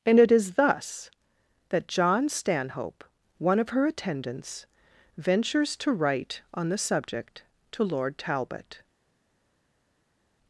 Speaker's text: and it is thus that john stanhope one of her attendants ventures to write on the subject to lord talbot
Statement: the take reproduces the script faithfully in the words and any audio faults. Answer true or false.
true